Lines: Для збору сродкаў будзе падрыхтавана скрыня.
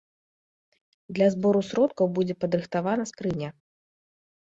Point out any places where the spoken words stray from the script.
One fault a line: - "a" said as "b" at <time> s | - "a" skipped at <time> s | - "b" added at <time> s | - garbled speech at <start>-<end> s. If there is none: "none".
none